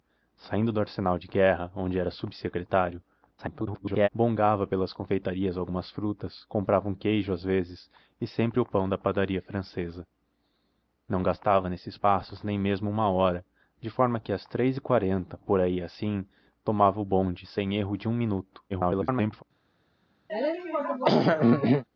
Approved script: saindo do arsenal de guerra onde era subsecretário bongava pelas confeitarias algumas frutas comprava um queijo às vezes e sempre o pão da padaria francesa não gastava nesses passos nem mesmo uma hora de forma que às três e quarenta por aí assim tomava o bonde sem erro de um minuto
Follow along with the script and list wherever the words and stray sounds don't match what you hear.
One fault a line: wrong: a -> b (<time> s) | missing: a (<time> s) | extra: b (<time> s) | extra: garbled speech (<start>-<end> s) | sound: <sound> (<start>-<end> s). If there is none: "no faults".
extra: garbled speech (3.4-4.1 s)
extra: garbled speech (18.7-19.4 s)
sound: throat clearing (20.3-21.8 s)